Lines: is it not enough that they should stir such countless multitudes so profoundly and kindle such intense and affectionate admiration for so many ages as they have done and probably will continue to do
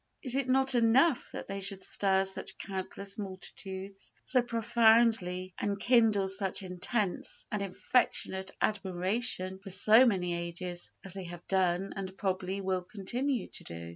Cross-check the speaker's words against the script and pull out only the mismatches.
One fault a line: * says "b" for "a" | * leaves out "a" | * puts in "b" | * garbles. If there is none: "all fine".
all fine